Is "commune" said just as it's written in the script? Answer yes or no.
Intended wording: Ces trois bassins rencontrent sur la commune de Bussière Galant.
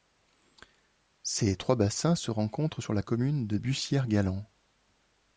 yes